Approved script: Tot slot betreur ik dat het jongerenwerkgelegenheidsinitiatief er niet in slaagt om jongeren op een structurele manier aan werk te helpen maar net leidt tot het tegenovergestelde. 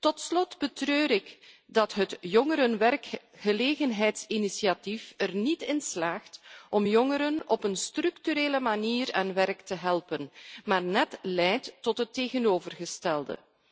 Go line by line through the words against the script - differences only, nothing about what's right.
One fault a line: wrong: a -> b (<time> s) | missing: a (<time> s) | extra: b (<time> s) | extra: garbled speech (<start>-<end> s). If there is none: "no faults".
no faults